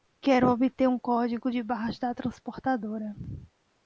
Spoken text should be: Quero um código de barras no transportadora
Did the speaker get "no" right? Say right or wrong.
wrong